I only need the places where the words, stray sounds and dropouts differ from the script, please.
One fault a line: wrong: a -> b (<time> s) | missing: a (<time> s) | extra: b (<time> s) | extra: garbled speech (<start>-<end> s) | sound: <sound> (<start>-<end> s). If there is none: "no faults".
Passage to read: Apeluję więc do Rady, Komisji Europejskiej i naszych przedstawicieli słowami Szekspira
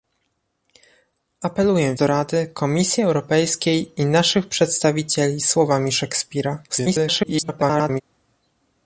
missing: więc (1.9 s)
extra: garbled speech (6.7-8.0 s)